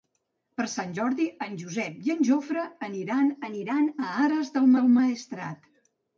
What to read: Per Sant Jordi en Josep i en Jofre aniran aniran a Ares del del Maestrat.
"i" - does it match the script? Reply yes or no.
yes